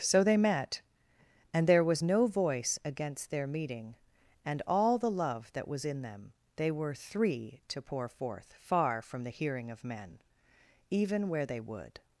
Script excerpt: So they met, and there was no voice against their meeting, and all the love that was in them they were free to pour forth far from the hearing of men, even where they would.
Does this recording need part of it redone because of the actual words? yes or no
yes